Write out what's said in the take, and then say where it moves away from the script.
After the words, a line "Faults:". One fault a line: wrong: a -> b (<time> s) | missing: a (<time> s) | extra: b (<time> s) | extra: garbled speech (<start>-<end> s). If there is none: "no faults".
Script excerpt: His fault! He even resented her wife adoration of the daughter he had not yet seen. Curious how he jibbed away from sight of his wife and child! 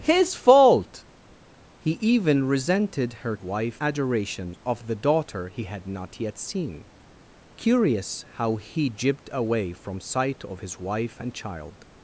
His fault! He even resented her wife adoration of the daughter he had not yet seen. Curious how he jibbed away from sight of his wife and child!
Faults:
no faults